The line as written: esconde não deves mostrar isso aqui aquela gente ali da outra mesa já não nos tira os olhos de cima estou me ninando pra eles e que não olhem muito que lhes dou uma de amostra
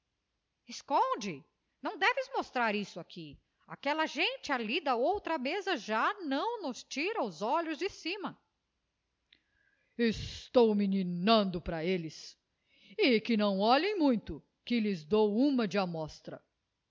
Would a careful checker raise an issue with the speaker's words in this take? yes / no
no